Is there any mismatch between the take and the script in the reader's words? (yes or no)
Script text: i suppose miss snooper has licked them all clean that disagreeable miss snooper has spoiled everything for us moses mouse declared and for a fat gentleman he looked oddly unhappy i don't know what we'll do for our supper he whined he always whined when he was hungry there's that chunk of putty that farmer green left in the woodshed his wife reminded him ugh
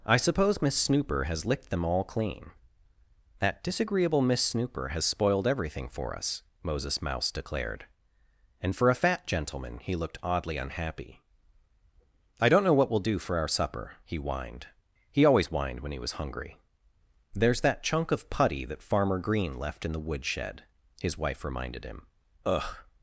no